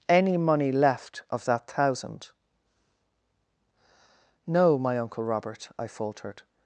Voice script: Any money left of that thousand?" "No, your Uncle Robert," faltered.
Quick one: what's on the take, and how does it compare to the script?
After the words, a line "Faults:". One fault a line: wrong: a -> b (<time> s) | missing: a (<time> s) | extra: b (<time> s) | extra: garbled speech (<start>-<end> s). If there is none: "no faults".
Any money left of that thousand?" "No, my Uncle Robert," I faltered.
Faults:
wrong: your -> my (4.8 s)
extra: I (5.8 s)